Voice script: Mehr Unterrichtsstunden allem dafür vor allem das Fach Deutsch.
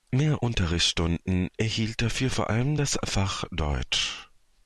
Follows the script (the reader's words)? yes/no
no